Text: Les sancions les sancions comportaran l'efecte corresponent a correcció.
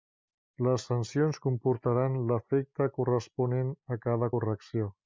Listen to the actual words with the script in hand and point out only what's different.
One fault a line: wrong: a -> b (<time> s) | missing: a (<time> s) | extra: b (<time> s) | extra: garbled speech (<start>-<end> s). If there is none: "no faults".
missing: les sancions (1.4 s)
extra: cada (4.1 s)